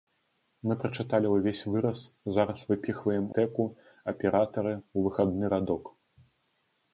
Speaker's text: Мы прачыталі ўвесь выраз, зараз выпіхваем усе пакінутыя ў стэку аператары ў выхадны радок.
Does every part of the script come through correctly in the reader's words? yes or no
no